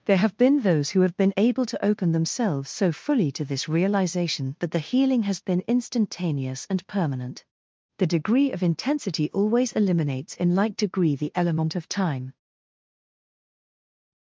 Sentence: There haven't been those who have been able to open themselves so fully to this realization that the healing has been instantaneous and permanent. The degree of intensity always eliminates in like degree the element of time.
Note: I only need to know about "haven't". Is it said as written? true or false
false